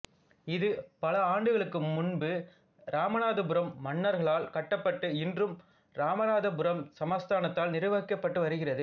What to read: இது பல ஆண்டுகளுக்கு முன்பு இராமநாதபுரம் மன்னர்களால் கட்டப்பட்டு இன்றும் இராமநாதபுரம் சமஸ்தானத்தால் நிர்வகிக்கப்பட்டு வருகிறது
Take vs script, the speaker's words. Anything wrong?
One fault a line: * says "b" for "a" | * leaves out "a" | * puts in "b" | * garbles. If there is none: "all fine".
all fine